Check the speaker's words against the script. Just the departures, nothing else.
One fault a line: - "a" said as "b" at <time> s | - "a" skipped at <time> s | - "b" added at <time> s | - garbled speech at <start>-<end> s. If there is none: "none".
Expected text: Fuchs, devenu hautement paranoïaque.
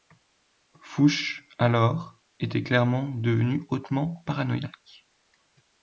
- "alors était clairement" added at 1.6 s